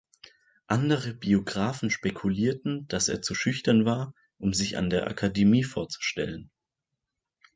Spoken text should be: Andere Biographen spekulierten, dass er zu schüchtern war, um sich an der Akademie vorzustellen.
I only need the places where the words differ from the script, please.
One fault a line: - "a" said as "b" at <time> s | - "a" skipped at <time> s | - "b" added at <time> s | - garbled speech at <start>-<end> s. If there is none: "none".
none